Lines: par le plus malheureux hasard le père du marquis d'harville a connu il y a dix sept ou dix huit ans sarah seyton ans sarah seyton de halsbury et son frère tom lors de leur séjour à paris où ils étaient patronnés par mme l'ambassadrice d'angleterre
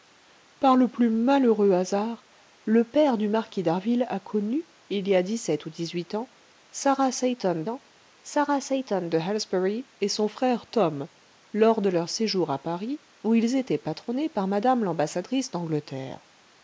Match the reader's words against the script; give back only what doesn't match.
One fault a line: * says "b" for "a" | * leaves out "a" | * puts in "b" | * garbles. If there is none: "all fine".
all fine